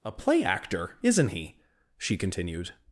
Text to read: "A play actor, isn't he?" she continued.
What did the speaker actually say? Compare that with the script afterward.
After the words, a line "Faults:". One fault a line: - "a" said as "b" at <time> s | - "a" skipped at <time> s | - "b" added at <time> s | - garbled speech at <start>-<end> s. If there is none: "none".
"A play actor, isn't he?" she continued.
Faults:
none